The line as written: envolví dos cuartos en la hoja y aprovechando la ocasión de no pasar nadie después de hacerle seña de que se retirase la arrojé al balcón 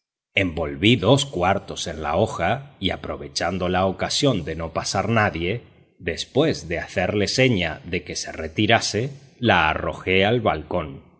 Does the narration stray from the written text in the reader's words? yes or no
no